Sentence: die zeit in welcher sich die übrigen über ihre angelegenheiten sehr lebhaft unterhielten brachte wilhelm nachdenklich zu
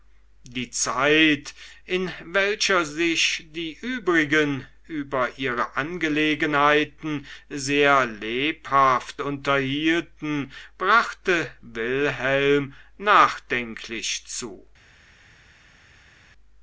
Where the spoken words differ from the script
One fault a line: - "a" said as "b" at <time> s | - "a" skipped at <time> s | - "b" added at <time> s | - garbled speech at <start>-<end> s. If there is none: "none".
none